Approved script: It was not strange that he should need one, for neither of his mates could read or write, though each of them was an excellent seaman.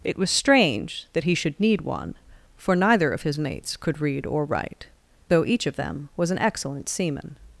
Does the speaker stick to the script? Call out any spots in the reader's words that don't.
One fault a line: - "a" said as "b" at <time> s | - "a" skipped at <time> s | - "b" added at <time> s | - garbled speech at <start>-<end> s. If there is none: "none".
- "not" skipped at 0.3 s